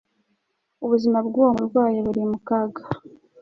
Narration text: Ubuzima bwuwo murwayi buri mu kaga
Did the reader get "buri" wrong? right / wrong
right